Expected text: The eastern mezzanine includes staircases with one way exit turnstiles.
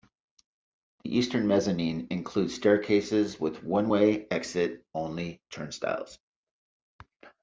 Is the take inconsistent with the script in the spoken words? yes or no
yes